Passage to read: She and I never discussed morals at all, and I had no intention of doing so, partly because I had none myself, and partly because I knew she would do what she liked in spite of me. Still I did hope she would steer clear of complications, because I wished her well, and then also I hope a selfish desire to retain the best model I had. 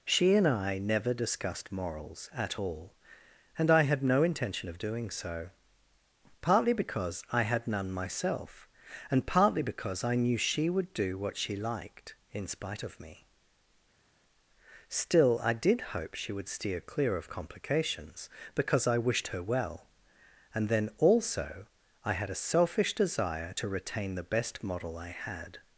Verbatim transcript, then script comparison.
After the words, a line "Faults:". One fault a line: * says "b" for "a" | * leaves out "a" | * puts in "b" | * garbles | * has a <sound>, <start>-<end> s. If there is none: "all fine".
She and I never discussed morals at all, and I had no intention of doing so, partly because I had none myself, and partly because I knew she would do what she liked in spite of me. Still I did hope she would steer clear of complications, because I wished her well, and then also I had a selfish desire to retain the best model I had.
Faults:
* says "had" for "hope"